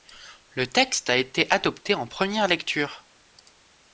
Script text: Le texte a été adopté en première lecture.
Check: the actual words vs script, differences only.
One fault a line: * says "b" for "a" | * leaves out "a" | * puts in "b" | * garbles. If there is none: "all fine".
all fine